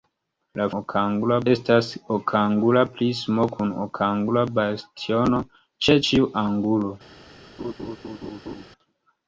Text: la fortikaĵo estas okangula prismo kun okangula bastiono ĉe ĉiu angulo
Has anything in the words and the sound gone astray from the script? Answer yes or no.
yes